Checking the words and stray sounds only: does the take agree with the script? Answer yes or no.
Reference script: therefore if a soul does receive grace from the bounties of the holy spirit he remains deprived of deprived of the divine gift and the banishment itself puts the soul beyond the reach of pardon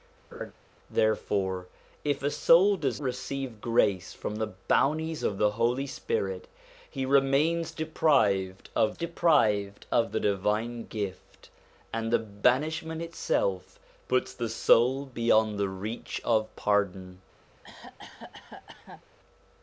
no